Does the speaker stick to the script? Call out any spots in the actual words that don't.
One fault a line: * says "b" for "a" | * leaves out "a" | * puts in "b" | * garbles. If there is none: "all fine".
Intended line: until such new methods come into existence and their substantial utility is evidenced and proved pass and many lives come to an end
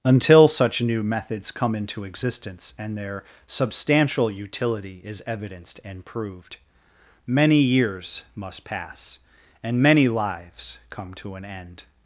* puts in "many years must"